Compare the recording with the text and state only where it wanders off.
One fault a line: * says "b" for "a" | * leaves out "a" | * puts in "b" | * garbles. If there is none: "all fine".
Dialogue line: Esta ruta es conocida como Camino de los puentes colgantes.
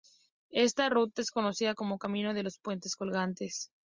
all fine